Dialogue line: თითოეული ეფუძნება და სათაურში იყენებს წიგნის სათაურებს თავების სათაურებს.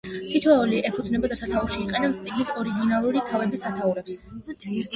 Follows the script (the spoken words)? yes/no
no